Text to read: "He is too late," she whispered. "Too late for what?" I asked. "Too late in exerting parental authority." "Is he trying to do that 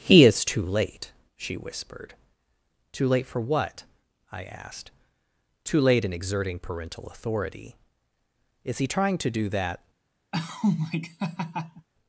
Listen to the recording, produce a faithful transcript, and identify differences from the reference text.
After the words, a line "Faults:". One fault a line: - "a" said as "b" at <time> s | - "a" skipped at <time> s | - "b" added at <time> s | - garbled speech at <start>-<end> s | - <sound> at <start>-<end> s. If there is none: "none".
"He is too late," she whispered. "Too late for what?" I asked. "Too late in exerting parental authority." "Is he trying to do that
Faults:
- laugh at 10.3-11.9 s